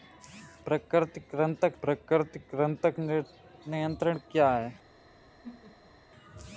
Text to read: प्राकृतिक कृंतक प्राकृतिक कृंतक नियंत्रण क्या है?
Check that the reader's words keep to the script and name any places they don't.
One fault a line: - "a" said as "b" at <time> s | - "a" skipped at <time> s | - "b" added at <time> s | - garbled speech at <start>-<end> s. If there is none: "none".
none